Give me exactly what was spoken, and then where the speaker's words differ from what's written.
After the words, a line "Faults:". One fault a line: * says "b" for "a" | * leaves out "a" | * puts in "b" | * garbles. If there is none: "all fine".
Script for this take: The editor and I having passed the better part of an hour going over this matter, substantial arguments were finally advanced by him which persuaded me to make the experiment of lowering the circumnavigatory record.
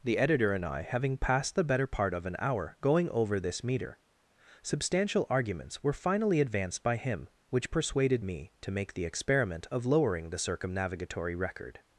The editor and I having passed the better part of an hour going over this meter, substantial arguments were finally advanced by him which persuaded me to make the experiment of lowering the circumnavigatory record.
Faults:
* says "meter" for "matter"